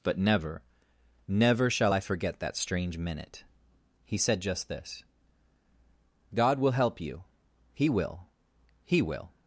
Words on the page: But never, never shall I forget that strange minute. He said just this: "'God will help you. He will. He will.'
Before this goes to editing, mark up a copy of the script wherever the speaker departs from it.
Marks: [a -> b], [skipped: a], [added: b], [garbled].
But never, never shall I forget that strange minute. He said just this: "'God will help you. He will. He will.'